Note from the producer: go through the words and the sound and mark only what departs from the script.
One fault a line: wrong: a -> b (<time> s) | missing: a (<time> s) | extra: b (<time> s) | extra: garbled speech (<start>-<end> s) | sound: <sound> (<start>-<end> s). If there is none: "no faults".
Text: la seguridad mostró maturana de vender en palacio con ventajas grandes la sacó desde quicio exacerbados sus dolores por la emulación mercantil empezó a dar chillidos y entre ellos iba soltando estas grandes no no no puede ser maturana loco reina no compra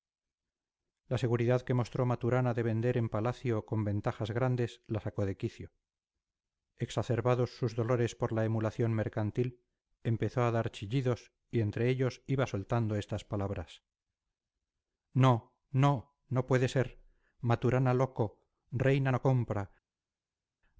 extra: que (1.6 s)
wrong: desde -> de (5.2 s)
wrong: grandes -> palabras (13.2 s)